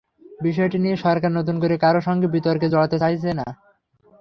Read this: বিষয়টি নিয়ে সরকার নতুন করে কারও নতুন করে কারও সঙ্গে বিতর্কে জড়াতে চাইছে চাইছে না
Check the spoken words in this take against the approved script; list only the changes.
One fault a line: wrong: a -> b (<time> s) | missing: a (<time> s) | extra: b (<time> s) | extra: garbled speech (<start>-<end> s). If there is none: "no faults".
missing: নতুন করে কারও (2.0 s)
missing: চাইছে (3.3 s)